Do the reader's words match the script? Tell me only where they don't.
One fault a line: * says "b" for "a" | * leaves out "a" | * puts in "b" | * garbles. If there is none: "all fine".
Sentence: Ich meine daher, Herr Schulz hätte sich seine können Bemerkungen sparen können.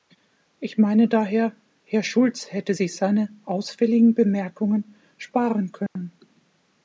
* says "ausfälligen" for "können"